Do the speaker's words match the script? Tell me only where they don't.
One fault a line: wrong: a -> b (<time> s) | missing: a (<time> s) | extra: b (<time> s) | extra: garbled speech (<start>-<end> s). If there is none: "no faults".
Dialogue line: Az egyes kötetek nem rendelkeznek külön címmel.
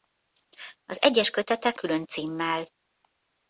missing: nem rendelkeznek (1.8 s)